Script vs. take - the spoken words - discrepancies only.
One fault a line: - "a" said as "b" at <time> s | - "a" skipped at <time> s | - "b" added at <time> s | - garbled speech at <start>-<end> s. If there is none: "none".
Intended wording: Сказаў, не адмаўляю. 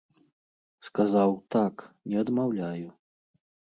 - "так" added at 1.6 s